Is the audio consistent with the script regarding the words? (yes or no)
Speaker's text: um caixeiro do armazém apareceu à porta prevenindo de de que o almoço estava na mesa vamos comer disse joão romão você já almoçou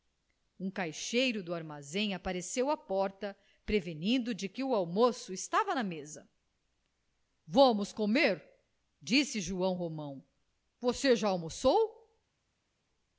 no